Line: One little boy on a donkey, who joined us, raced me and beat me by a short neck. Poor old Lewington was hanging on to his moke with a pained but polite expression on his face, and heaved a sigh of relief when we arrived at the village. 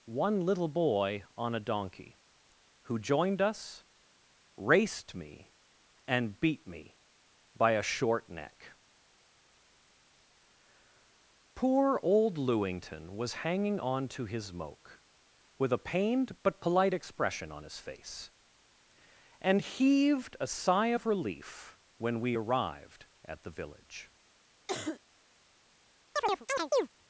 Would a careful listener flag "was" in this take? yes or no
no